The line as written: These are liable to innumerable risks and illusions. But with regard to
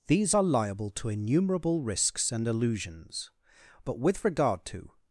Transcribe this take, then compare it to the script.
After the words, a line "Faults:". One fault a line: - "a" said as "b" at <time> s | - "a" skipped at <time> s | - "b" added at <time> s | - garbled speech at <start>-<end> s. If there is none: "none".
These are liable to innumerable risks and illusions. But with regard to
Faults:
none